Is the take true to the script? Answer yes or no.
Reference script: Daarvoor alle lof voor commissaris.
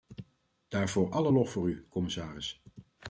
no